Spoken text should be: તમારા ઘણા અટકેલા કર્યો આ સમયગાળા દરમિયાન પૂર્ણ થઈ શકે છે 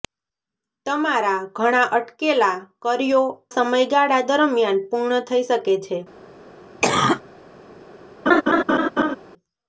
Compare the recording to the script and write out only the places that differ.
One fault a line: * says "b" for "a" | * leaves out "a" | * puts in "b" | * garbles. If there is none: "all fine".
* leaves out "આ"